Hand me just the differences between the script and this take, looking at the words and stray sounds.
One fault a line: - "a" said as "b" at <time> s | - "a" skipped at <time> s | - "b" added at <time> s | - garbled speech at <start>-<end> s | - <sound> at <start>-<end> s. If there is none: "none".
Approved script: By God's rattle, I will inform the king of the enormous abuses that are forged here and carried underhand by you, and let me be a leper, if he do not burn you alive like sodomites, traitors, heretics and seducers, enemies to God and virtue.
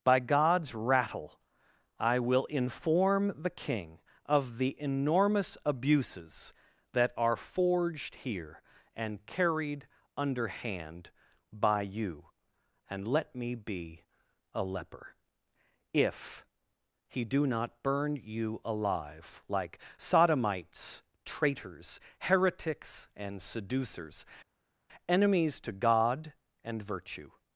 none